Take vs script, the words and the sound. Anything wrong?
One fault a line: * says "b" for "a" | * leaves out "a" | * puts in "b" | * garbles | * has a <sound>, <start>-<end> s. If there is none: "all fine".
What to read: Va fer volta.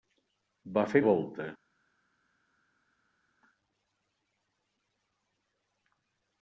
all fine